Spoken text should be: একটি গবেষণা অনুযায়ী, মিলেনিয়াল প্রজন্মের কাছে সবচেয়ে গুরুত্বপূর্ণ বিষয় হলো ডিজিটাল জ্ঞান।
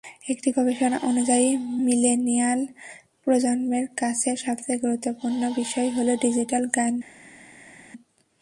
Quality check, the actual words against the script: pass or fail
pass